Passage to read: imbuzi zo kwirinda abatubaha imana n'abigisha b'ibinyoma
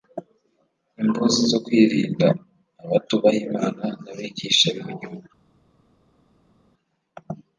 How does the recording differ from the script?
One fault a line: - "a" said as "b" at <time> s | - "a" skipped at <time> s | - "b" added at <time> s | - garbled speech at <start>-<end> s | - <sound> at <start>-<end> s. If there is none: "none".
none